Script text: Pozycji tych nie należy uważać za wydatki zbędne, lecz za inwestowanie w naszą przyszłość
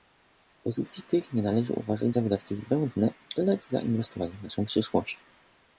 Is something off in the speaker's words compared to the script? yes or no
no